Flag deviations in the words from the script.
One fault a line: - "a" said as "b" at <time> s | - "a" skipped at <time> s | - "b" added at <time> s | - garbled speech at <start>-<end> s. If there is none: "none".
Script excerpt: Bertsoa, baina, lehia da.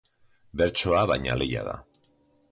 none